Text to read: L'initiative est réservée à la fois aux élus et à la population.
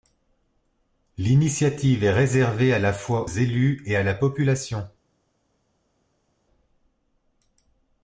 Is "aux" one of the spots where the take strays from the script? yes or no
yes